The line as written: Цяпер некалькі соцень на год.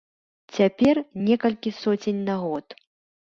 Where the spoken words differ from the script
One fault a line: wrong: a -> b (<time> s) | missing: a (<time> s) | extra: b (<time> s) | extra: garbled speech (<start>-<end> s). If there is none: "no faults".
no faults